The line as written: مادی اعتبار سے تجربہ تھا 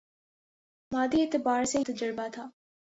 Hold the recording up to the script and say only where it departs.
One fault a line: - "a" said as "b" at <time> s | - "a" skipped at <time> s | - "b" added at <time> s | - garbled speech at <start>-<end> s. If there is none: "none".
none